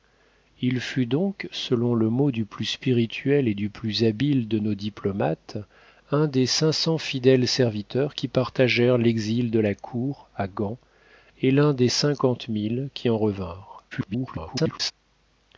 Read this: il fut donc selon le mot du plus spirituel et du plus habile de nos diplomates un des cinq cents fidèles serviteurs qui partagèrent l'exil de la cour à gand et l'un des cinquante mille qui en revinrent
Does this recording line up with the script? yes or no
no